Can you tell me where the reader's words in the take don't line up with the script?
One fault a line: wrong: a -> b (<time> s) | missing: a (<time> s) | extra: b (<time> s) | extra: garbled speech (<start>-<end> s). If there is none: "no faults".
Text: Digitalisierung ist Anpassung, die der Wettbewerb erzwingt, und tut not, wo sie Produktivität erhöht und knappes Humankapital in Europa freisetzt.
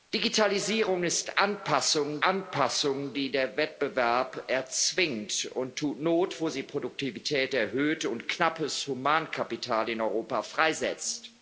extra: Anpassung (2.2 s)